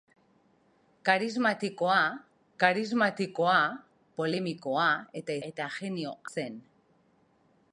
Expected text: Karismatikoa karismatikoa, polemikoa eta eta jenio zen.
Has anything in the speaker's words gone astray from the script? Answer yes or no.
no